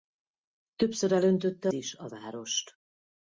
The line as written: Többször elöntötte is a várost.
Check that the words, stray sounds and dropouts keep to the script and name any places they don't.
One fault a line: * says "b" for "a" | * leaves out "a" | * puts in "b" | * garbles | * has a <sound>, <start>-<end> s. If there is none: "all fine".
all fine